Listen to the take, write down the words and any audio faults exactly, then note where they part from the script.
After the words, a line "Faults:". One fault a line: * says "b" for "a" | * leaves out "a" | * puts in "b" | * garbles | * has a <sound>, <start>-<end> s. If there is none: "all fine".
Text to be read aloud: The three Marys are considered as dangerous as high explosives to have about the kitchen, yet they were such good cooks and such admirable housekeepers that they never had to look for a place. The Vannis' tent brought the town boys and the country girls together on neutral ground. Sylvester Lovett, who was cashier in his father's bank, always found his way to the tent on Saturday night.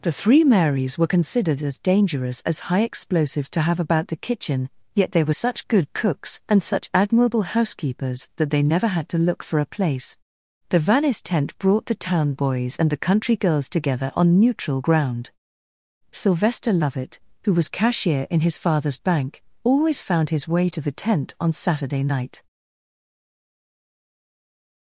The three Marys were considered as dangerous as high explosives to have about the kitchen, yet they were such good cooks and such admirable housekeepers that they never had to look for a place. The Vannis' tent brought the town boys and the country girls together on neutral ground. Sylvester Lovett, who was cashier in his father's bank, always found his way to the tent on Saturday night.
Faults:
* says "were" for "are"